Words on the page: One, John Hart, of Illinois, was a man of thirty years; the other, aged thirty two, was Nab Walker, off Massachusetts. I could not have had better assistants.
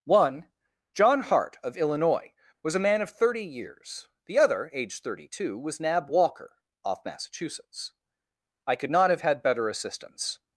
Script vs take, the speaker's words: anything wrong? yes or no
no